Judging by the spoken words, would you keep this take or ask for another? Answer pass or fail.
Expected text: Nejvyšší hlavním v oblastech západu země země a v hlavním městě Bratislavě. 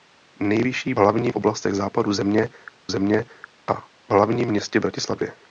pass